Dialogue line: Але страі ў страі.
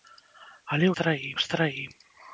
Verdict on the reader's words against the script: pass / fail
pass